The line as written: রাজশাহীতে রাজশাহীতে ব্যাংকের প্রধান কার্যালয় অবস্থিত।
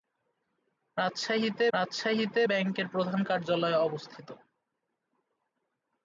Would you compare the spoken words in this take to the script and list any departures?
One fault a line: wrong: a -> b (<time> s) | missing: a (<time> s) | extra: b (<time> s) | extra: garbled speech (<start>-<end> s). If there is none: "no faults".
no faults